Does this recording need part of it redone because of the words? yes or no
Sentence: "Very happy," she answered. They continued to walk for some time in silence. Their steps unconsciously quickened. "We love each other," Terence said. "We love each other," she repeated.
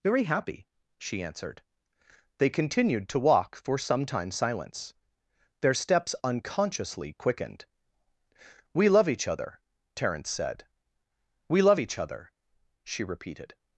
yes